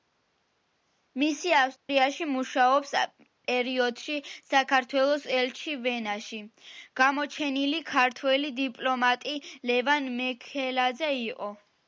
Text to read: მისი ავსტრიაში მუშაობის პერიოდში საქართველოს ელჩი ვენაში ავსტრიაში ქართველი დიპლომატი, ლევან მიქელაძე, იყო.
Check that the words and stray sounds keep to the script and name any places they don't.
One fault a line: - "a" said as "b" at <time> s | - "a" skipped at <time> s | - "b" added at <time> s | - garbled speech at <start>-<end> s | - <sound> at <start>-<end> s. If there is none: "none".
- dropout at 1.8-1.9 s
- "ავსტრიაში" said as "გამოჩენილი" at 7.0 s